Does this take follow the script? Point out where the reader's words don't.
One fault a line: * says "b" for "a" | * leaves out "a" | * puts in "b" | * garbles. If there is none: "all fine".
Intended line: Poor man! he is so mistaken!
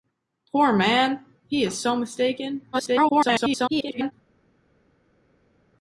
* garbles